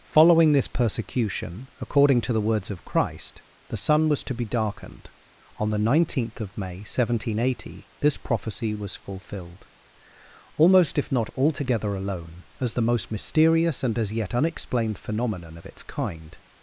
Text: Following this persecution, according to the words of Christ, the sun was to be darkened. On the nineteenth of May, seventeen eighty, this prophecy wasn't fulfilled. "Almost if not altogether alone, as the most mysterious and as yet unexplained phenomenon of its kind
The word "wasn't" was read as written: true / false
false